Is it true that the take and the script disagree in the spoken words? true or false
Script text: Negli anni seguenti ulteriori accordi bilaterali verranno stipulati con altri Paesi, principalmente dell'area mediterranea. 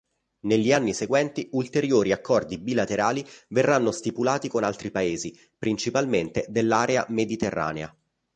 false